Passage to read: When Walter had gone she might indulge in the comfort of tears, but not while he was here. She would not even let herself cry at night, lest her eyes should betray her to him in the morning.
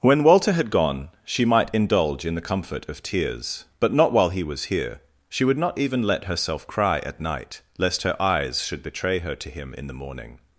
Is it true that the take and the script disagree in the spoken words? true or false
false